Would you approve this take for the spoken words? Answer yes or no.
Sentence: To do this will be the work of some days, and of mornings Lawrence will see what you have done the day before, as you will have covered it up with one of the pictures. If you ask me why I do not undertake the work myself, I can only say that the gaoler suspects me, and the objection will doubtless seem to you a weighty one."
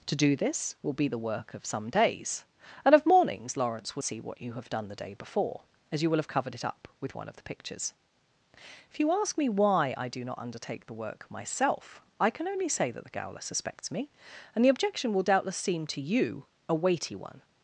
yes